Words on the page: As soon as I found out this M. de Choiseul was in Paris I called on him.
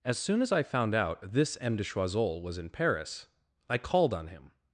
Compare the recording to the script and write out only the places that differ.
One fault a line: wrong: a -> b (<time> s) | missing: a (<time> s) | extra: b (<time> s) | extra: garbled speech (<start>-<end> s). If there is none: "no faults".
no faults